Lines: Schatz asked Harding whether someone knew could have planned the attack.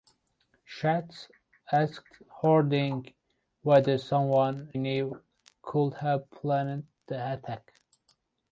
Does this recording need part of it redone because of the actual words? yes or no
no